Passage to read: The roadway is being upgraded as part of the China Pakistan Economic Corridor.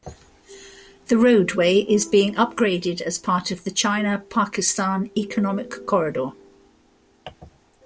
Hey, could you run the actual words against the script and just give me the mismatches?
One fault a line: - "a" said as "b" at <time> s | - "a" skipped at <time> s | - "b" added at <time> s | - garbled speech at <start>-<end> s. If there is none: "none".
none